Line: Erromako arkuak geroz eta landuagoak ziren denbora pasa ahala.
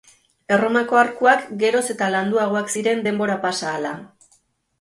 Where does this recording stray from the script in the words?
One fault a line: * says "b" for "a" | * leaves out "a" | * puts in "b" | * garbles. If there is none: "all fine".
all fine